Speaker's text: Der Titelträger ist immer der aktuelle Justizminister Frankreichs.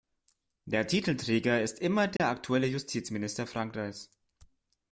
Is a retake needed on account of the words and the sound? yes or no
yes